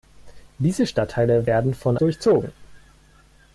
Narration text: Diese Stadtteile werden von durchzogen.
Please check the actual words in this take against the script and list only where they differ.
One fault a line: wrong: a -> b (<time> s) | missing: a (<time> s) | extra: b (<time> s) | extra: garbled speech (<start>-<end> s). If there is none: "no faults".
no faults